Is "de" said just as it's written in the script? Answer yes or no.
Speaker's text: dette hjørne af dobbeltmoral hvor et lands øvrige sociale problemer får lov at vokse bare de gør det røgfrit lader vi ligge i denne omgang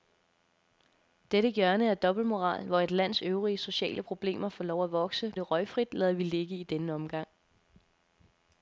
no